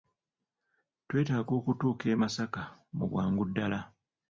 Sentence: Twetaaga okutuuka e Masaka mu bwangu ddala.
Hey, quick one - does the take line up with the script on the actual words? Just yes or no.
yes